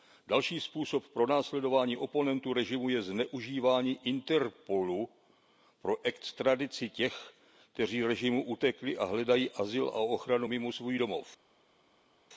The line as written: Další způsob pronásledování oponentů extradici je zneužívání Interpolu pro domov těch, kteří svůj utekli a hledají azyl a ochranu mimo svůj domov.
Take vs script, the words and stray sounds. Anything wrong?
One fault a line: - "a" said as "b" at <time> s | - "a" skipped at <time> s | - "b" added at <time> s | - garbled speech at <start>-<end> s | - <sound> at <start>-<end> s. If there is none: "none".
- "extradici" said as "režimu" at 2.5 s
- "domov" said as "extradici" at 6.0 s
- "svůj" said as "režimu" at 8.0 s